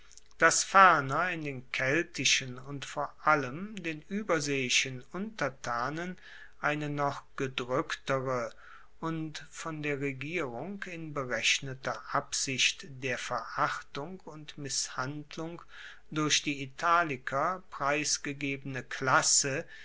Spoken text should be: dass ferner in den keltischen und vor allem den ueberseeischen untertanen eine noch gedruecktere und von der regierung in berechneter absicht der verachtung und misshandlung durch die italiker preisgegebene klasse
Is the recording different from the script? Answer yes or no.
no